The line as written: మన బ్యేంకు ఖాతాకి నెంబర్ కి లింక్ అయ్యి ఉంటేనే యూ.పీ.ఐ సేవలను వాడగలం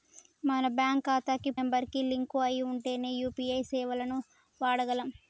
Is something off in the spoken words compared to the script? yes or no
no